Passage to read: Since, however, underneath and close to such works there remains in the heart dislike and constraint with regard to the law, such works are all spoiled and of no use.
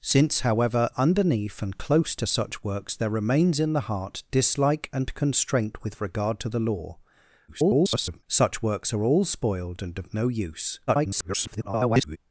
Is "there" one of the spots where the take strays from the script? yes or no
no